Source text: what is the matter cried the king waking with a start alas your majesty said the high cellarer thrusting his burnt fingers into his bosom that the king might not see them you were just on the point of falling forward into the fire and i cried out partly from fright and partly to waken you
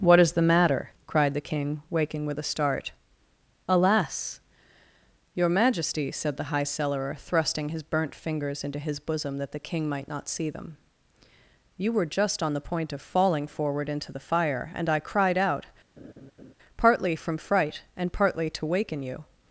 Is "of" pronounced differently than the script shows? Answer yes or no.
no